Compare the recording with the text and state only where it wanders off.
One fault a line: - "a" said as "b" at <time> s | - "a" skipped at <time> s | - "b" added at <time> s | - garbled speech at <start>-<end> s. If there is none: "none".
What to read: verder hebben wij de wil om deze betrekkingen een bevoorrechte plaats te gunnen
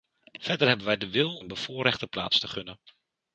- "om deze betrekkingen" skipped at 1.4 s